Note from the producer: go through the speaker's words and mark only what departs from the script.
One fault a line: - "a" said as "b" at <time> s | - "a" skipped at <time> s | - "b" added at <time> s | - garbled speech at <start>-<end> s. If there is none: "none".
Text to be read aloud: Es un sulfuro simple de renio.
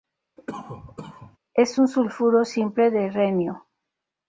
none